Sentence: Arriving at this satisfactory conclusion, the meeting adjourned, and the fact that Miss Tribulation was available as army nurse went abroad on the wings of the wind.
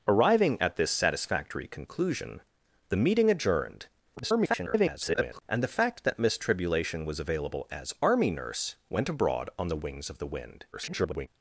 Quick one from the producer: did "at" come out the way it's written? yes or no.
yes